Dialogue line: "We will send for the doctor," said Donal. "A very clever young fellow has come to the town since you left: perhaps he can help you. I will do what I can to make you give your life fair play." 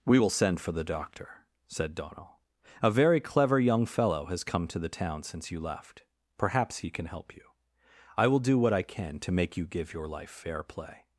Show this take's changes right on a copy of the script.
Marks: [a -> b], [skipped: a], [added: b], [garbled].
"We will send for the doctor," said Donal. "A very clever young fellow has come to the town since you left: perhaps he can help you. I will do what I can to make you give your life fair play."